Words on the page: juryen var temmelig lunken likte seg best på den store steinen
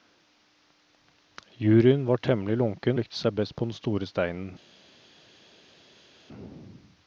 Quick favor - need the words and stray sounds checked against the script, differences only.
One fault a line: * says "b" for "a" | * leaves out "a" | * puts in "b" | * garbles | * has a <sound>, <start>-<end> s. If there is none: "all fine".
all fine